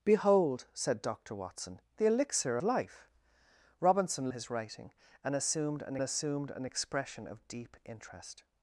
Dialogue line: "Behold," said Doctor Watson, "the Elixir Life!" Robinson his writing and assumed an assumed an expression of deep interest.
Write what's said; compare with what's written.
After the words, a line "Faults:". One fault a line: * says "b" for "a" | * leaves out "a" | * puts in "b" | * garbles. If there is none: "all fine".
"Behold," said Doctor Watson, "the Elixir Life!" Robinson his writing and assumed an assumed an expression of deep interest.
Faults:
all fine